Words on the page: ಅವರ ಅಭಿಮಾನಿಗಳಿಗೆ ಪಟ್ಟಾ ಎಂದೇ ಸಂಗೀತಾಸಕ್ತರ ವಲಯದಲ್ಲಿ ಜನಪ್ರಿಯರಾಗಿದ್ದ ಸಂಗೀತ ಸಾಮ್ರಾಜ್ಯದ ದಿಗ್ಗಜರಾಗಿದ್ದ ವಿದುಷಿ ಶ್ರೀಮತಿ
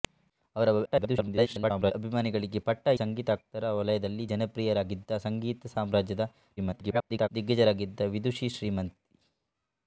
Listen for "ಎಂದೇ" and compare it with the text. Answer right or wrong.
wrong